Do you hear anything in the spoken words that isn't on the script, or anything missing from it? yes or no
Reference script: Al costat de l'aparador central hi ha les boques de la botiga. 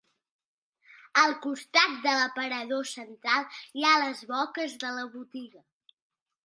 no